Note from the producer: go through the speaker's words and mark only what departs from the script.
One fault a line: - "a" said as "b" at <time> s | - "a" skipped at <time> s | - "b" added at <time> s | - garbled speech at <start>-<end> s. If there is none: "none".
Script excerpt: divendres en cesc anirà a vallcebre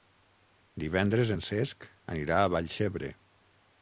none